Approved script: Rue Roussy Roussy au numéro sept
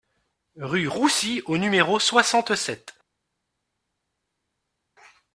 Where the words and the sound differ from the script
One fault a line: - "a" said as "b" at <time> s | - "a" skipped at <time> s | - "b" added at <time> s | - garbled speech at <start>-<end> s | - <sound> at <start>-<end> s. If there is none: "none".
- "Roussy" skipped at 1.4 s
- "soixante" added at 2.0 s